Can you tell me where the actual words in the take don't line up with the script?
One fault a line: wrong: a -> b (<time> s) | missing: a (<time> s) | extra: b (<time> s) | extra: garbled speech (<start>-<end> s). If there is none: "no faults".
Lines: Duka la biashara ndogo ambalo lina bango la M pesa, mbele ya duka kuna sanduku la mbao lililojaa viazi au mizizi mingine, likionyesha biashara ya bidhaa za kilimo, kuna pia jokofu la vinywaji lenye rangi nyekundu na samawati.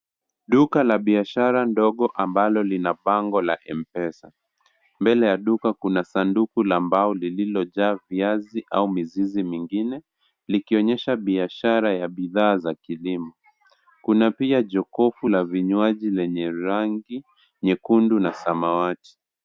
no faults